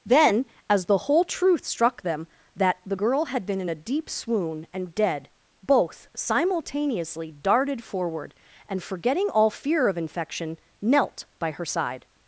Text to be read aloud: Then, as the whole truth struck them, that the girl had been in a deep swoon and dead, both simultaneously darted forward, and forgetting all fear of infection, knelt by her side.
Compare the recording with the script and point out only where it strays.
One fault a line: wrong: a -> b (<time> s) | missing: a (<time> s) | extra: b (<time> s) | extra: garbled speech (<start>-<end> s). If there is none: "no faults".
no faults